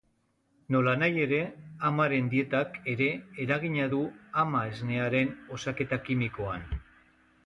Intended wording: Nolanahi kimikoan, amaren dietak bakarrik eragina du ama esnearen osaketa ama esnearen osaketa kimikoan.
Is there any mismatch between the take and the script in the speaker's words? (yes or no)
yes